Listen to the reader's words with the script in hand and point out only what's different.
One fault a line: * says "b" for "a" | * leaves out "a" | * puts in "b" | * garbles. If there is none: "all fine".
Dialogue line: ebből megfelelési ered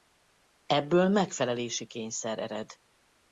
* puts in "kényszer"